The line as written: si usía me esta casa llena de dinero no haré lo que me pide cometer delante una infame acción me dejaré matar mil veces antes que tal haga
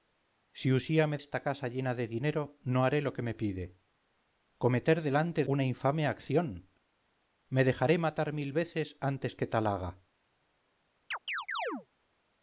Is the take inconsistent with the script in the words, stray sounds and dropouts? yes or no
yes